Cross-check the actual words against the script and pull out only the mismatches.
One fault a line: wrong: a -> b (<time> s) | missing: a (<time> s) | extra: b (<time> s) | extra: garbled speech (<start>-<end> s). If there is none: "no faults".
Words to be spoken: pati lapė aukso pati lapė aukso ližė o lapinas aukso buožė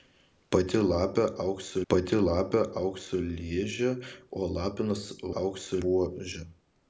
no faults